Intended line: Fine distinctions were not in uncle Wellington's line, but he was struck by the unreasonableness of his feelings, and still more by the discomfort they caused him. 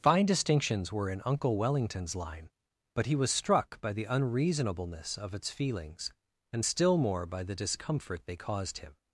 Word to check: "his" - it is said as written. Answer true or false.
false